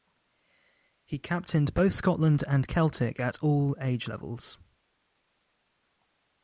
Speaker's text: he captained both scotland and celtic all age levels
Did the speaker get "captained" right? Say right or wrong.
right